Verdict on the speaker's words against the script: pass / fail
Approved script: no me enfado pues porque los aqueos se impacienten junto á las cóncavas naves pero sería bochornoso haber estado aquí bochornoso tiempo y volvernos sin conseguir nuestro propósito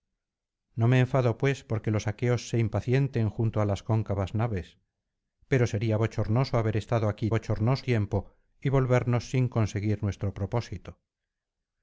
pass